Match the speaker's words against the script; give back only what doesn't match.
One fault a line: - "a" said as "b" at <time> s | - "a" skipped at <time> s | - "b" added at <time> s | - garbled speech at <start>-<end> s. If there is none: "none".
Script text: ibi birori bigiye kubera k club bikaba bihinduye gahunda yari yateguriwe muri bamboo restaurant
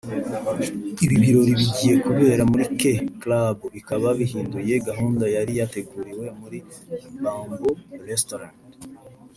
- "muri" added at 2.5 s